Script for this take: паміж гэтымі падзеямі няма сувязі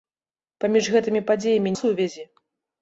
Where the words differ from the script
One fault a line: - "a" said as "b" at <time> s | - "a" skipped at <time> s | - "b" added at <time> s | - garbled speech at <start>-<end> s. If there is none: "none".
- "няма" skipped at 1.8 s